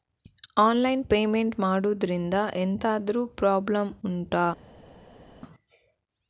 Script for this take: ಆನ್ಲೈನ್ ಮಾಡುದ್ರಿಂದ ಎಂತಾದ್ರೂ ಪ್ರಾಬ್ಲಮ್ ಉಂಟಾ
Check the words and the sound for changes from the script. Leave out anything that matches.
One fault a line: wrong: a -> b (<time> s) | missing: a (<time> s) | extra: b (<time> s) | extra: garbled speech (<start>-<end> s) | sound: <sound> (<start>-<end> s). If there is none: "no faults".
extra: ಪೇಮೆಂಟ್ (1.1 s)